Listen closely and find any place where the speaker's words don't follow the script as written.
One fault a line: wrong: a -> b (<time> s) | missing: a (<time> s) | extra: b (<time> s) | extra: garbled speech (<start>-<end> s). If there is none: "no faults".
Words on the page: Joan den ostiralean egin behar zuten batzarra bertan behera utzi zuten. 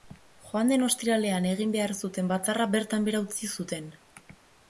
no faults